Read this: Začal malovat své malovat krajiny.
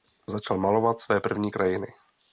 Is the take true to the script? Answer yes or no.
no